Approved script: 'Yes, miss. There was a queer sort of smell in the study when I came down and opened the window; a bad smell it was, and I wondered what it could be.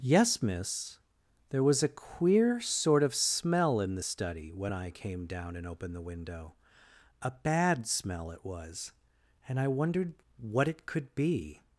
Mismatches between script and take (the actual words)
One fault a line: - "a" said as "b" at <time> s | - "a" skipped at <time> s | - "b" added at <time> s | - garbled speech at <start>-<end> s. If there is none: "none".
none